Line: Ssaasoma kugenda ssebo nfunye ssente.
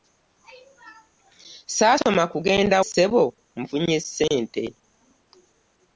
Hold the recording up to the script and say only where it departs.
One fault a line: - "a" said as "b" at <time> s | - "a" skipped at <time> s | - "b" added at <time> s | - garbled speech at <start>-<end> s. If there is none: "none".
none